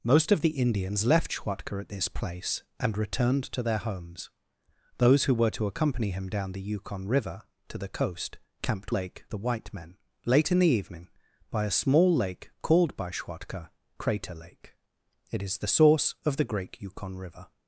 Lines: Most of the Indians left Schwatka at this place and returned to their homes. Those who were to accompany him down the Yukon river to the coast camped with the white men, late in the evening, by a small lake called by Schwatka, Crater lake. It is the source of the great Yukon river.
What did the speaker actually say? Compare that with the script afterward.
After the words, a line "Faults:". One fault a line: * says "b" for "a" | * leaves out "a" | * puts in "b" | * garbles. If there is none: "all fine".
Most of the Indians left Schwatka at this place and returned to their homes. Those who were to accompany him down the Yukon river to the coast camped lake the white men, late in the evening, by a small lake called by Schwatka, Crater lake. It is the source of the great Yukon river.
Faults:
* says "lake" for "with"